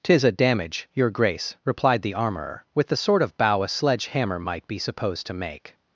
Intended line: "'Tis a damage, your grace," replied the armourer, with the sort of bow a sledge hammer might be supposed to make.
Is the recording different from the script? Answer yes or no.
no